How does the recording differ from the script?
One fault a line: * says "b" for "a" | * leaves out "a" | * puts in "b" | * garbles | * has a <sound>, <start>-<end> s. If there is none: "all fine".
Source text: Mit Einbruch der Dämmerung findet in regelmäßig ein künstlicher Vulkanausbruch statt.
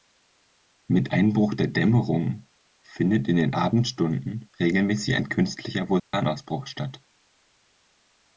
* puts in "den Abendstunden"
* has a dropout, 6.0-6.1 s